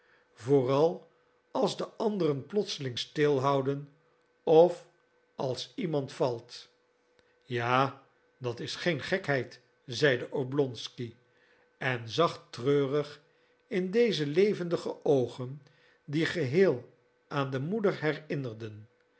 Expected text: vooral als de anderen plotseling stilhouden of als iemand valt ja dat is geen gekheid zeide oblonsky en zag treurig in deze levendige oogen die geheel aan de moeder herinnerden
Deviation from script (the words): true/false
false